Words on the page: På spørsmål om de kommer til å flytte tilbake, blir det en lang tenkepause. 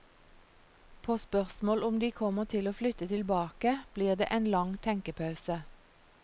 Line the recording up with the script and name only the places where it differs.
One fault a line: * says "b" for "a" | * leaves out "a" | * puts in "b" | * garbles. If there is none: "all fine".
all fine